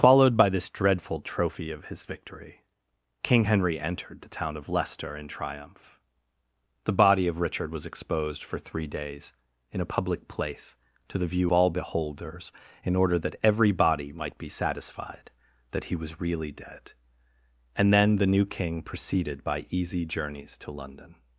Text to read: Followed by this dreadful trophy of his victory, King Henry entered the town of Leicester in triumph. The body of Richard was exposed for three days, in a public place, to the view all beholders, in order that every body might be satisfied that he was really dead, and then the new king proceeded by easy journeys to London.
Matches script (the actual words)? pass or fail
pass